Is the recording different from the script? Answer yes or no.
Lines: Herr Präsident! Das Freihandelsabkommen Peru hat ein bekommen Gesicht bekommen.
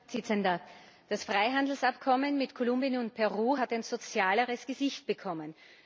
yes